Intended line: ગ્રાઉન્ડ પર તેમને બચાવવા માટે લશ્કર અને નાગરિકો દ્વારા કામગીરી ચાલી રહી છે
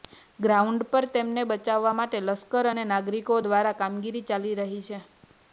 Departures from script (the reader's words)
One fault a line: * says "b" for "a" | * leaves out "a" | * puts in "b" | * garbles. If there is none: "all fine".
all fine